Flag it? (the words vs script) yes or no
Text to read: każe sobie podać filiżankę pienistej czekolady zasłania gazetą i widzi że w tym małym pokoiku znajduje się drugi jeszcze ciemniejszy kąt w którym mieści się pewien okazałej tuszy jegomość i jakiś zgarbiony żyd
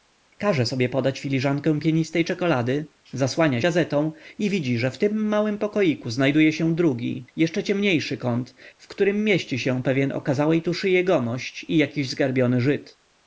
no